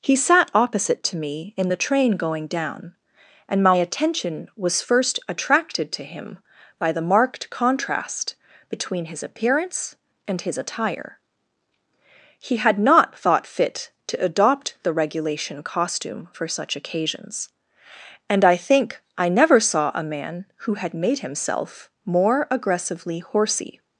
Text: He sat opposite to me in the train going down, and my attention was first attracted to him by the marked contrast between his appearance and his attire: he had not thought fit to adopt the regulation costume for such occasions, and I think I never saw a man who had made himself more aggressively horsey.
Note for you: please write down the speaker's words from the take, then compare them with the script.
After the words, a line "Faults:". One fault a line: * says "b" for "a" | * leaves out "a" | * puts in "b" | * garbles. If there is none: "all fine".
He sat opposite to me in the train going down, and my attention was first attracted to him by the marked contrast between his appearance and his attire: he had not thought fit to adopt the regulation costume for such occasions, and I think I never saw a man who had made himself more aggressively horsey.
Faults:
all fine